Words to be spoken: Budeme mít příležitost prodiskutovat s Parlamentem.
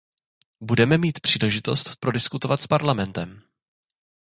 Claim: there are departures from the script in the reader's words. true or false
false